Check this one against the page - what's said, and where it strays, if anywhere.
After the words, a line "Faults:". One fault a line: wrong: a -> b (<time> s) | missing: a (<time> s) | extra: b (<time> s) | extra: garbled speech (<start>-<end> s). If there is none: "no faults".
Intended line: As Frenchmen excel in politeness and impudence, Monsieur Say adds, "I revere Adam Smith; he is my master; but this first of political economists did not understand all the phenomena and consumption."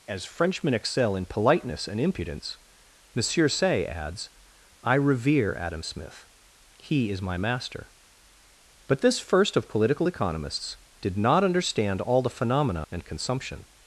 As Frenchmen excel in politeness and impudence, Monsieur Say adds, "I revere Adam Smith; he is my master; but this first of political economists did not understand all the phenomena and consumption."
Faults:
no faults